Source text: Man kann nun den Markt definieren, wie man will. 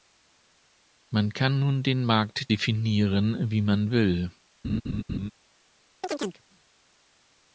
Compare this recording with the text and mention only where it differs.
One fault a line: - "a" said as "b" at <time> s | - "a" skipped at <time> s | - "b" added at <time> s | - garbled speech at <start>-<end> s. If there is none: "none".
none